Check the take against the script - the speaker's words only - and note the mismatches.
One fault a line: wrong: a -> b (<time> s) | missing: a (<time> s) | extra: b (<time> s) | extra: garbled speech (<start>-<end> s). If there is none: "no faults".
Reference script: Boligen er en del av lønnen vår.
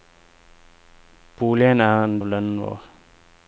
missing: del (2.2 s)